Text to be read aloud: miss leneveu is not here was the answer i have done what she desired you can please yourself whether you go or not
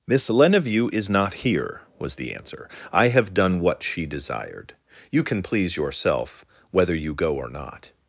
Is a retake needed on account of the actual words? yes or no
no